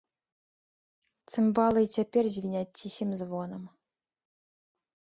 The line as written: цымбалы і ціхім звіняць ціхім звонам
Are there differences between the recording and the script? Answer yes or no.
yes